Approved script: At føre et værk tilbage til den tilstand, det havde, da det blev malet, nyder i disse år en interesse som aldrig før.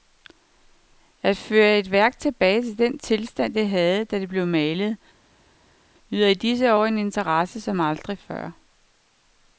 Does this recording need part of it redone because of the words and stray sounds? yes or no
no